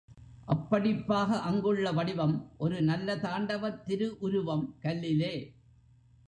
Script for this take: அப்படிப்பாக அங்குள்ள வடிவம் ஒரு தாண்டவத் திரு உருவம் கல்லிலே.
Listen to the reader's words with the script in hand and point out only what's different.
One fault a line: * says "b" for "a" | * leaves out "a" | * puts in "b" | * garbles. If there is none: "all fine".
* puts in "நல்ல"